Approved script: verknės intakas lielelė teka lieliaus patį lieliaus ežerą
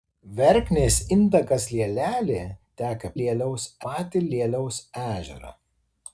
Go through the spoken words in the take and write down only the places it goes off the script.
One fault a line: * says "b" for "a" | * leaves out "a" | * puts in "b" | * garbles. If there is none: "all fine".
all fine